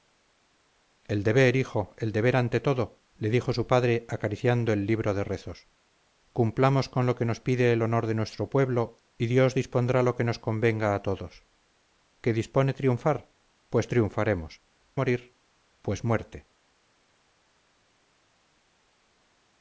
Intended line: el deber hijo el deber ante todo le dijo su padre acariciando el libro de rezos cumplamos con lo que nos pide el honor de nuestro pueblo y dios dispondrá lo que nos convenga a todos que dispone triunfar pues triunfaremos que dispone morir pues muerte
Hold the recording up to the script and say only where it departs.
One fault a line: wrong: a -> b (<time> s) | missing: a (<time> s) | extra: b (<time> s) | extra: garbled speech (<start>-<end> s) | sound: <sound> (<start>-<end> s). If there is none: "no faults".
missing: que dispone (14.6 s)